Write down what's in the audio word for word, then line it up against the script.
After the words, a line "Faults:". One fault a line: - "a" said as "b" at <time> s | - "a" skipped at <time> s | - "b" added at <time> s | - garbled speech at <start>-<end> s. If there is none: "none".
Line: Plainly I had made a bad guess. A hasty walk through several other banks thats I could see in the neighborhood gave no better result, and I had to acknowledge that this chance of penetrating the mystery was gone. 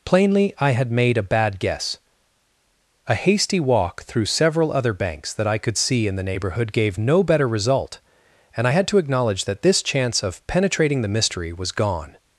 Plainly I had made a bad guess. A hasty walk through several other banks that I could see in the neighborhood gave no better result, and I had to acknowledge that this chance of penetrating the mystery was gone.
Faults:
- "thats" said as "that" at 5.3 s